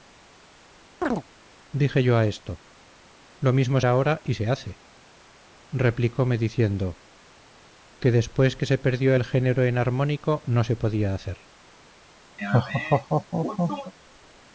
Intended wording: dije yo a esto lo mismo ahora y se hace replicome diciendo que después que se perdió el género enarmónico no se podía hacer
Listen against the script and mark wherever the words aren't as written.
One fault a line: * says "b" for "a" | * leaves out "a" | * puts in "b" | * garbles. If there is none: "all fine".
all fine